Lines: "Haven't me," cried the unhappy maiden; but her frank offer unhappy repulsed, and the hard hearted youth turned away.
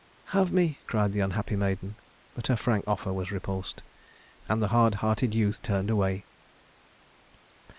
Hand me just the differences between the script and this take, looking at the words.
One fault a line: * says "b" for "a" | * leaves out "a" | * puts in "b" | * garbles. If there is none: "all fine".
* says "Have" for "Haven't"
* says "was" for "unhappy"